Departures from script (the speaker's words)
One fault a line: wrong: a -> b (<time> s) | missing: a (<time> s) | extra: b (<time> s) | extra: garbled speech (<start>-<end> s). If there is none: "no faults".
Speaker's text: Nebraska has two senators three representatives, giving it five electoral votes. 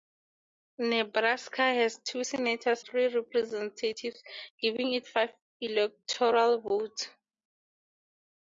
no faults